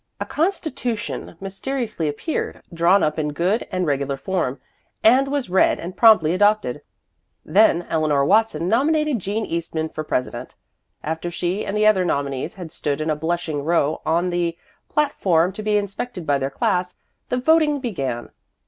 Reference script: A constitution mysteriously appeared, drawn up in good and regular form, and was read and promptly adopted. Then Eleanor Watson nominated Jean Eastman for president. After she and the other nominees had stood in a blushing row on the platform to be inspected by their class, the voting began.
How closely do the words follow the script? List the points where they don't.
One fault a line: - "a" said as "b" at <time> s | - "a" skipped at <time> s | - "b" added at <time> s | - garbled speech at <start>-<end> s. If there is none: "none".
none